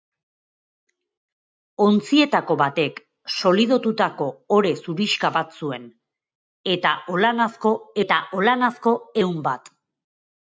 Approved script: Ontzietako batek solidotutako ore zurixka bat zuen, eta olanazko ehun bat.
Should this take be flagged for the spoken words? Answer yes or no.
yes